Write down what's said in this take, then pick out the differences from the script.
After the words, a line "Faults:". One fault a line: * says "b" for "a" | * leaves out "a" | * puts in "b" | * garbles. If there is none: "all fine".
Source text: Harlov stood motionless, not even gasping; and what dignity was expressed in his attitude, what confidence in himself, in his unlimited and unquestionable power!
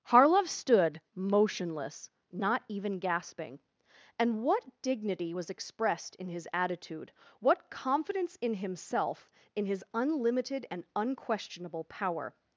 Harlov stood motionless, not even gasping; and what dignity was expressed in his attitude, what confidence in himself, in his unlimited and unquestionable power!
Faults:
all fine